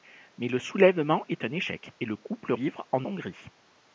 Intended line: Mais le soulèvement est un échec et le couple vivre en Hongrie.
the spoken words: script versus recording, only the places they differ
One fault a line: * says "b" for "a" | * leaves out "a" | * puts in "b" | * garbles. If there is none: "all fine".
all fine